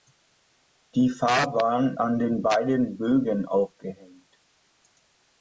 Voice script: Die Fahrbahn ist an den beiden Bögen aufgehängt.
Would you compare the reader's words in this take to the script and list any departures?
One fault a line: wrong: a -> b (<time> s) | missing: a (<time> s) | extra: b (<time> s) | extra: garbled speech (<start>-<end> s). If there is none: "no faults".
missing: ist (2.0 s)